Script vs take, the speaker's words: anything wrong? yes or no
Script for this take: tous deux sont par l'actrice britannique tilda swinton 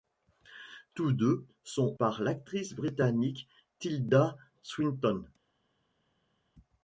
no